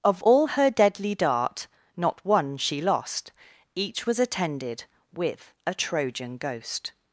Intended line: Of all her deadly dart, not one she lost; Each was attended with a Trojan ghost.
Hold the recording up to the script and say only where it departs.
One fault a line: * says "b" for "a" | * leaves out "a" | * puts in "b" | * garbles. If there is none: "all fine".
all fine